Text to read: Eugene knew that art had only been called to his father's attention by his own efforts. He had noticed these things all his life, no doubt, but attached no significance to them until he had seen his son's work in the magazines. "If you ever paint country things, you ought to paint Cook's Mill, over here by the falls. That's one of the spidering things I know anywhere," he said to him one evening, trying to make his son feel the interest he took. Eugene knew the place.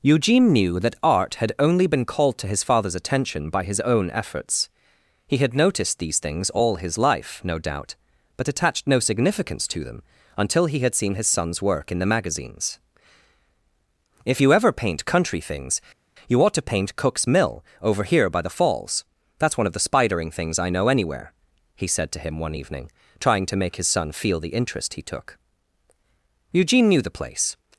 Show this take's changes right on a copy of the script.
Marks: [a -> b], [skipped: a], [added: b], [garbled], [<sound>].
Eugene knew that art had only been called to his father's attention by his own efforts. He had noticed these things all his life, no doubt, but attached no significance to them until he had seen his son's work in the magazines. "If you ever paint country things, you ought to paint Cook's Mill, over here by the falls. That's one of the spidering things I know anywhere," he said to him one evening, trying to make his son feel the interest he took. Eugene knew the place.